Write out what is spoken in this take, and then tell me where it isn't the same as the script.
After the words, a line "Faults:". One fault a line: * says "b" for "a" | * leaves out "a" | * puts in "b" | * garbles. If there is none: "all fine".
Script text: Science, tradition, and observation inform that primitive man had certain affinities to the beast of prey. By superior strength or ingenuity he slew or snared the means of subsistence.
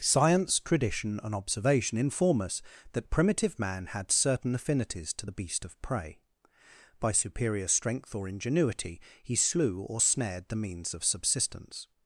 Science, tradition, and observation inform us that primitive man had certain affinities to the beast of prey. By superior strength or ingenuity he slew or snared the means of subsistence.
Faults:
* puts in "us"